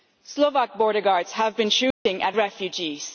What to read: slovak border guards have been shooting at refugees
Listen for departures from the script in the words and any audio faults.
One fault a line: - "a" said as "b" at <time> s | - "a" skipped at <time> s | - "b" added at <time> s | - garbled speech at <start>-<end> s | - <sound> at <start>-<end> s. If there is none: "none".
- dropout at 1.9-2.1 s